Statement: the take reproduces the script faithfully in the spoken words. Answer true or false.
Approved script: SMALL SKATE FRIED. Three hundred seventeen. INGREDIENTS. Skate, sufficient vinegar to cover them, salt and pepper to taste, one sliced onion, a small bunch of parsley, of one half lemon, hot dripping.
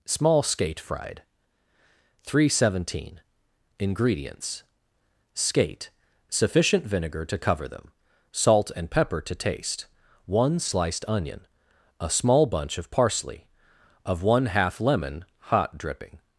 true